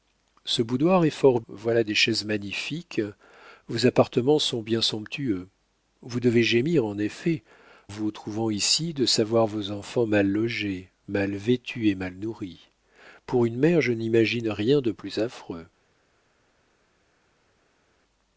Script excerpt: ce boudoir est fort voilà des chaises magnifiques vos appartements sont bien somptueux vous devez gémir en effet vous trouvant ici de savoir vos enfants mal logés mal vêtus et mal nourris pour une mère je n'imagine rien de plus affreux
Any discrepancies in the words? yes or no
no